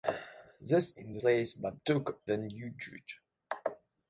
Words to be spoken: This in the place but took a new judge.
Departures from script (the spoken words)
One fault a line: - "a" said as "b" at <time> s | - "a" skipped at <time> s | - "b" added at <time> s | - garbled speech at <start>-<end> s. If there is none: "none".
none